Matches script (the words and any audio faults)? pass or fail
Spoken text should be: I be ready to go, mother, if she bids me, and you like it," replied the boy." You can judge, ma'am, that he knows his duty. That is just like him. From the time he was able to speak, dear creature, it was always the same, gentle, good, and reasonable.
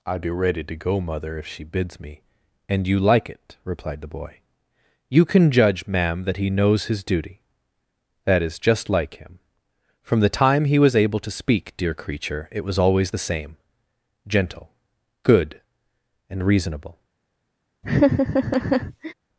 fail